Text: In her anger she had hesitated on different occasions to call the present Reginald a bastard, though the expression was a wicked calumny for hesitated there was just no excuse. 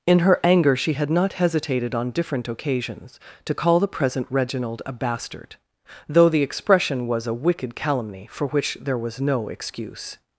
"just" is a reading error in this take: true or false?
true